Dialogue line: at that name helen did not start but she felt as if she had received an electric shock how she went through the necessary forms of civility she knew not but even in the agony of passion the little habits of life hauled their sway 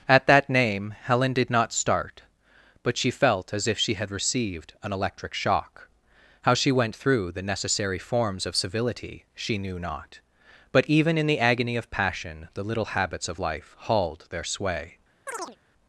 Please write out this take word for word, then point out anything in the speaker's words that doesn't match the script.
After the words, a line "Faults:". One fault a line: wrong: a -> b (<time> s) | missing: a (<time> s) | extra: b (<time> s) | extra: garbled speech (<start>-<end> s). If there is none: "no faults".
at that name helen did not start but she felt as if she had received an electric shock how she went through the necessary forms of civility she knew not but even in the agony of passion the little habits of life hauled their sway
Faults:
no faults